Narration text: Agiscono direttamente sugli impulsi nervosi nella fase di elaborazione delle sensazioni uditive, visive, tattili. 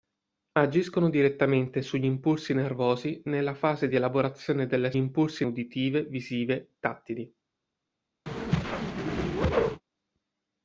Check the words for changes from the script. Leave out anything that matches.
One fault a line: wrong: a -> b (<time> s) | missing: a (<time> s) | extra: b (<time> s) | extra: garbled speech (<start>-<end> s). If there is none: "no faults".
wrong: sensazioni -> impulsi (5.0 s)